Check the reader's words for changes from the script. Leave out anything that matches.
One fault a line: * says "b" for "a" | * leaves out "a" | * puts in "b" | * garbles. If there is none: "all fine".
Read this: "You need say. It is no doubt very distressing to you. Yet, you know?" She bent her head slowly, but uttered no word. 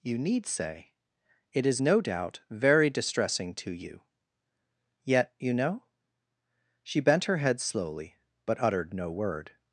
all fine